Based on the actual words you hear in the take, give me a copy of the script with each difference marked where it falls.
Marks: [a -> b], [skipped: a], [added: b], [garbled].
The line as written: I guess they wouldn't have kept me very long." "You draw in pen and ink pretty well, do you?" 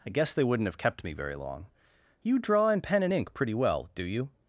I guess they wouldn't have kept me very long." "You draw in pen and ink pretty well, do you?"